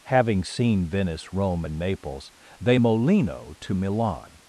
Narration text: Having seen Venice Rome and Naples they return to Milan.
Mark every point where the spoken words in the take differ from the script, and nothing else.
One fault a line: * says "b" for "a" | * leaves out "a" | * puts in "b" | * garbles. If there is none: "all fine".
* says "molino" for "return"